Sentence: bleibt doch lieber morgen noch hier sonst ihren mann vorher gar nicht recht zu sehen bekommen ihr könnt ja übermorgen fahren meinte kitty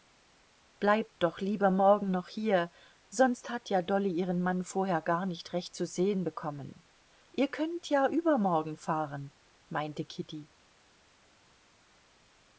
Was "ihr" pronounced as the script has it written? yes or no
yes